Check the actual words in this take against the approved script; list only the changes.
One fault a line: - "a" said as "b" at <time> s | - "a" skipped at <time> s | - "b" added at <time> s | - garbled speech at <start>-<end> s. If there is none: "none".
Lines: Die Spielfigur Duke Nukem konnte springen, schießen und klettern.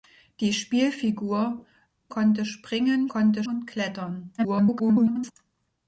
- "Duke Nukem" skipped at 1.7 s
- "schießen" said as "konnte" at 3.1 s
- garbled speech at 4.4-5.3 s